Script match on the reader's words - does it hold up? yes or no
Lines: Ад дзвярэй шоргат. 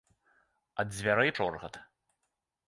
yes